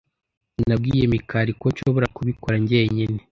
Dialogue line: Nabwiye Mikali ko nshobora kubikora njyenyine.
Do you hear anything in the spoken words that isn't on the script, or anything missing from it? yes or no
no